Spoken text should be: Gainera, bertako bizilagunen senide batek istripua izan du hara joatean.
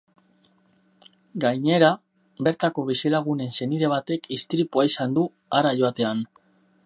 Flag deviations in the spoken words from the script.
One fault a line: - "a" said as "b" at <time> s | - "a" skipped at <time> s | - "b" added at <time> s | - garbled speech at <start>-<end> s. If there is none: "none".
none